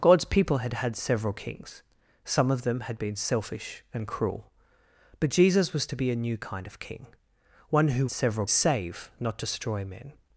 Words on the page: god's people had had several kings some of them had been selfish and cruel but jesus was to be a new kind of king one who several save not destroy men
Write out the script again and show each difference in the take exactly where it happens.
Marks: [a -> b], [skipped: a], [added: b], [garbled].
god's people had had several kings some of them had been selfish and cruel but jesus was to be a new kind of king one who several save not destroy men